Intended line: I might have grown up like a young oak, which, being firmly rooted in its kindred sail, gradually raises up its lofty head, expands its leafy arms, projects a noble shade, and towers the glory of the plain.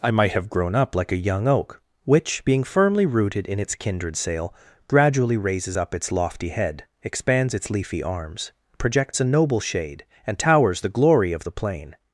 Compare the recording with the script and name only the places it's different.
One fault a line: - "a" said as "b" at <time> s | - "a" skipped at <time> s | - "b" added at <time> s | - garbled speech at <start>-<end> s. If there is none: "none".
none